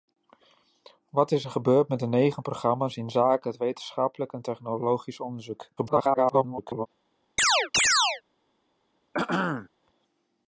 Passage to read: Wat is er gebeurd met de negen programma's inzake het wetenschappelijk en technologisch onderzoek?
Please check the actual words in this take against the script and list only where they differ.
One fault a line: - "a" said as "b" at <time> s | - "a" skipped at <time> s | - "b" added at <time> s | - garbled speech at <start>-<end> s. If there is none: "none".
- garbled speech at 5.8-6.9 s